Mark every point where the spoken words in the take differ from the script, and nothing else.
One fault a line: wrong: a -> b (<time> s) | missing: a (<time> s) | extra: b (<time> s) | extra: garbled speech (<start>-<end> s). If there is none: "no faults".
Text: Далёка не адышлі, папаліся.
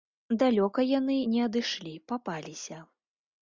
extra: яны (1.0 s)